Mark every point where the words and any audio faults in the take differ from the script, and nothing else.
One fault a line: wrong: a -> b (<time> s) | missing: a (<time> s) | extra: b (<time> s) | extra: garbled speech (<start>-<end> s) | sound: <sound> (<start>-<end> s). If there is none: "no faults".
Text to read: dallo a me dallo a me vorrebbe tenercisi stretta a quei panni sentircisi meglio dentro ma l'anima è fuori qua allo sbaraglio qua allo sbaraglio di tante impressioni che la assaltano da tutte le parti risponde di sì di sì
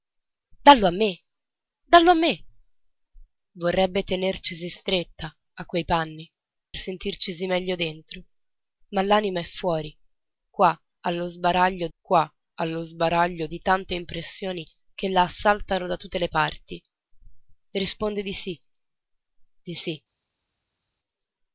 no faults